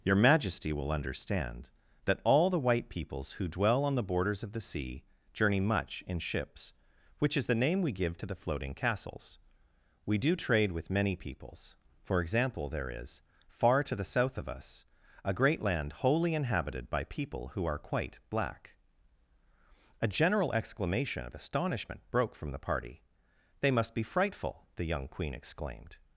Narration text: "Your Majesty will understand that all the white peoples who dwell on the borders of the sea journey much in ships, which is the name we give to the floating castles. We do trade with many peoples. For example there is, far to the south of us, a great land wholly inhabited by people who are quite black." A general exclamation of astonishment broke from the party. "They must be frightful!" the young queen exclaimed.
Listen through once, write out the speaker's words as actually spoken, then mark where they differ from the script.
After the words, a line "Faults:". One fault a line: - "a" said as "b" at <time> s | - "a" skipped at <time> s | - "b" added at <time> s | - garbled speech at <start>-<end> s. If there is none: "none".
"Your Majesty will understand that all the white peoples who dwell on the borders of the sea journey much in ships, which is the name we give to the floating castles. We do trade with many peoples. For example there is, far to the south of us, a great land wholly inhabited by people who are quite black." A general exclamation of astonishment broke from the party. "They must be frightful!" the young queen exclaimed.
Faults:
none